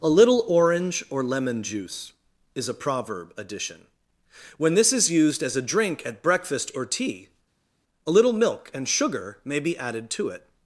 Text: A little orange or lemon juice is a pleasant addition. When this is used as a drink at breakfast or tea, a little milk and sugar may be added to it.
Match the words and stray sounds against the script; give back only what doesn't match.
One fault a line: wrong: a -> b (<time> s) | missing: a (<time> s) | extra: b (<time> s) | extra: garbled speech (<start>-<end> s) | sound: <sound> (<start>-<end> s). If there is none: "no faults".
wrong: pleasant -> proverb (2.7 s)